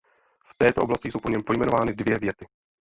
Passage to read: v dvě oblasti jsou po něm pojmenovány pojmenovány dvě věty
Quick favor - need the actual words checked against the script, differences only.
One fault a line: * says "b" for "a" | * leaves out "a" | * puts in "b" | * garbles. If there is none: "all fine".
* says "této" for "dvě"
* leaves out "pojmenovány"